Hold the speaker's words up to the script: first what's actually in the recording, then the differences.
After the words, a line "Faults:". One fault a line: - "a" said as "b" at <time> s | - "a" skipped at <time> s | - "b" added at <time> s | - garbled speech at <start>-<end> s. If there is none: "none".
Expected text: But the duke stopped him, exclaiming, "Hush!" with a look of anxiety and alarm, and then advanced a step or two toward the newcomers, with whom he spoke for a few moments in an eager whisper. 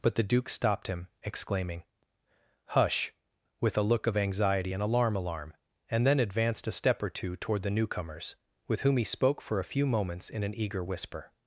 But the duke stopped him, exclaiming, "Hush!" with a look of anxiety and alarm alarm, and then advanced a step or two toward the newcomers, with whom he spoke for a few moments in an eager whisper.
Faults:
- "alarm" added at 5.2 s